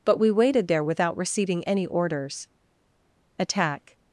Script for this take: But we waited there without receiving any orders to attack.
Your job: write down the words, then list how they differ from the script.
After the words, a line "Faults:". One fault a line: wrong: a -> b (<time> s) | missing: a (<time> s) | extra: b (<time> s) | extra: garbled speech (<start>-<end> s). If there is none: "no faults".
But we waited there without receiving any orders attack.
Faults:
missing: to (2.5 s)